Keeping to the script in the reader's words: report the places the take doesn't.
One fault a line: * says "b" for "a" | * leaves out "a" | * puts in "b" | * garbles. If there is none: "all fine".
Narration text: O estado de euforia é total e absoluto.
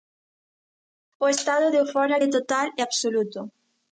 all fine